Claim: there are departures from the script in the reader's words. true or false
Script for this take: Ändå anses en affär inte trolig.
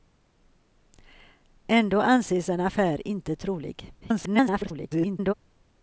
true